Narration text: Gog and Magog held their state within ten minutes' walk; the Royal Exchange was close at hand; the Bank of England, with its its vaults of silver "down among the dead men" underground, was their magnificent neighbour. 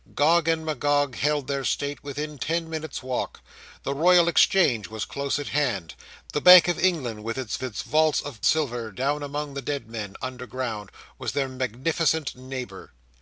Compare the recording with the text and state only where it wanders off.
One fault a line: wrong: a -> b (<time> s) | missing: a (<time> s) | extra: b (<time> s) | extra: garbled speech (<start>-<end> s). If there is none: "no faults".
no faults